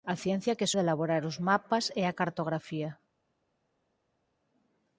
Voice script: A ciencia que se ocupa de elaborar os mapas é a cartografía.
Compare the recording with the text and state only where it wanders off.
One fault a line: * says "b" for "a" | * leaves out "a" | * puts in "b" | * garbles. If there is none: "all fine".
* leaves out "ocupa"